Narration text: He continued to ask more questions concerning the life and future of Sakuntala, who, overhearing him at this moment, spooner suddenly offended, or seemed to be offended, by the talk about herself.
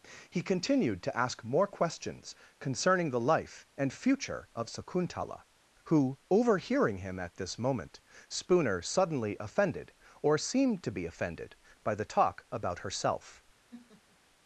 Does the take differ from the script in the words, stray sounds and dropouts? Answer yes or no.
yes